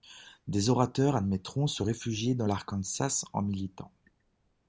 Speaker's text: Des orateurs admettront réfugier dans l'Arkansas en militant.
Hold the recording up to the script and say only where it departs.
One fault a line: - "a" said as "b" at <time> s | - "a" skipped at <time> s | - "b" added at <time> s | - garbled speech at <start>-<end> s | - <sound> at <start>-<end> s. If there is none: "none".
- "se" added at 1.7 s